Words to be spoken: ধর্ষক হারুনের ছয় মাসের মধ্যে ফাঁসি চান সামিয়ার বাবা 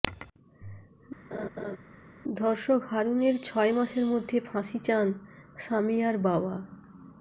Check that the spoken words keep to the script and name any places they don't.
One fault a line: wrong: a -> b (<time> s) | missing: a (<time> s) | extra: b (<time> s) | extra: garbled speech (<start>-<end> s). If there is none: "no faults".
no faults